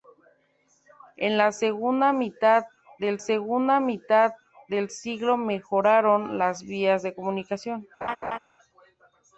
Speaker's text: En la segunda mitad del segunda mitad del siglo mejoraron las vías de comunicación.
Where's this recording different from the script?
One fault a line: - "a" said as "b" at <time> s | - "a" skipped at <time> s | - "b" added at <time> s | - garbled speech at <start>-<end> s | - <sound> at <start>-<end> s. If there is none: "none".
- laugh at 8.0-8.4 s